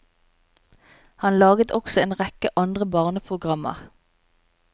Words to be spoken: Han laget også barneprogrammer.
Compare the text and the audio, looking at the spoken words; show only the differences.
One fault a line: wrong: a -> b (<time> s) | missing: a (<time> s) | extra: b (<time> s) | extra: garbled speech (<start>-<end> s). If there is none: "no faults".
extra: en rekke andre (2.0 s)